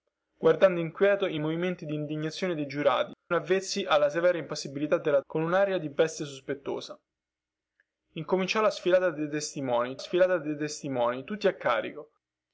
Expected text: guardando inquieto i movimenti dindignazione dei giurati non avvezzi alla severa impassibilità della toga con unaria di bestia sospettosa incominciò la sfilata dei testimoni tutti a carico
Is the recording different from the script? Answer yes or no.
yes